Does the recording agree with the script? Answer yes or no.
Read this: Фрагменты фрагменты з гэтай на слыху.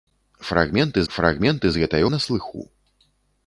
yes